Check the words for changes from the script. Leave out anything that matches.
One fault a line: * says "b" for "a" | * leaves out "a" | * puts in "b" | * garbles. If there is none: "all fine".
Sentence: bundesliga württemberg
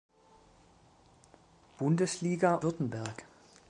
all fine